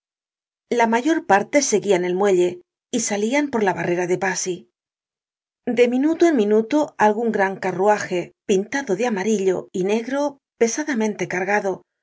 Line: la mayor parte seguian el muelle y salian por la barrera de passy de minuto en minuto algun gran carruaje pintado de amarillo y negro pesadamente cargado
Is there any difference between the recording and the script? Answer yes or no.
no